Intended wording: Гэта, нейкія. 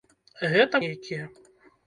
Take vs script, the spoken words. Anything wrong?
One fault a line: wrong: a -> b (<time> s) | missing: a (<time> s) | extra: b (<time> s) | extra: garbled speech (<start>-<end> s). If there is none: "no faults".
no faults